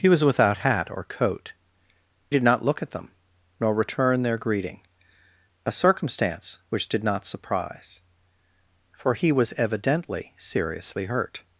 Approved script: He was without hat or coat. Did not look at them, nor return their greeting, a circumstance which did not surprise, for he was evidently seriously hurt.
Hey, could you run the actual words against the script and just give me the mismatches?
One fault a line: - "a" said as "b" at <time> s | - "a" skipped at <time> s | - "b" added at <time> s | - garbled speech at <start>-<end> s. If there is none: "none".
none